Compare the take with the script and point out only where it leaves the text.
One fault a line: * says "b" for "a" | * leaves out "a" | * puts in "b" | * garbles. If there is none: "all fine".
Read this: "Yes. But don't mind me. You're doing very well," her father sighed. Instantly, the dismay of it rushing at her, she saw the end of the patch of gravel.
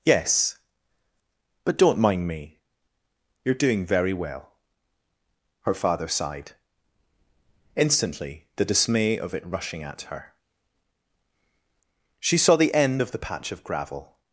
all fine